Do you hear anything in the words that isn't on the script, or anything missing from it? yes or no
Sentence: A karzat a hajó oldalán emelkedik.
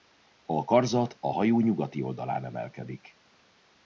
yes